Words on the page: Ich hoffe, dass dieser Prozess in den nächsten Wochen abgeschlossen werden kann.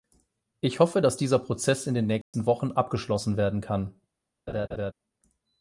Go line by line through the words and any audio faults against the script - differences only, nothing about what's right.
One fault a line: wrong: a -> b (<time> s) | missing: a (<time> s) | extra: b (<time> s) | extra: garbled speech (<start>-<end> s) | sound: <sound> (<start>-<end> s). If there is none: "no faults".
sound: dropout (2.2-2.3 s)
sound: laugh (4.5-4.9 s)